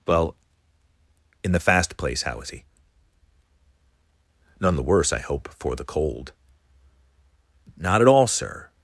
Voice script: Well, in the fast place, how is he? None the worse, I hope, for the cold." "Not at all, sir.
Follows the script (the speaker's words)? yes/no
yes